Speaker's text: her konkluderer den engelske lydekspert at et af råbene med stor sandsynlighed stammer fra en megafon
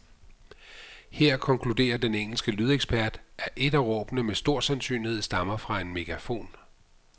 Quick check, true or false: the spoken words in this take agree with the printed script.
true